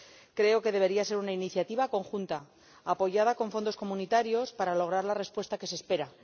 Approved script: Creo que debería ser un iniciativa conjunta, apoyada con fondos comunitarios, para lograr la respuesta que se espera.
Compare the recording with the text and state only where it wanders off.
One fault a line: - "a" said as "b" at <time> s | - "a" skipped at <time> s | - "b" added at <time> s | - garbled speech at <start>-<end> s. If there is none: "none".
- "un" said as "una" at 1.2 s